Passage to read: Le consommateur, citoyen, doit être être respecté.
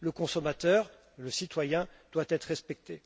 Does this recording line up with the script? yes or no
no